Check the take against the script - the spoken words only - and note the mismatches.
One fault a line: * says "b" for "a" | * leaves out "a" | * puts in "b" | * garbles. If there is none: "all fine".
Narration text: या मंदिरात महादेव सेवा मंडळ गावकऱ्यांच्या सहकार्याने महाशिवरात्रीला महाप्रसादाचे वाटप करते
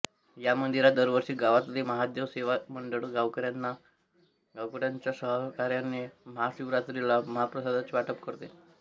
* puts in "दरवर्षी गावातले"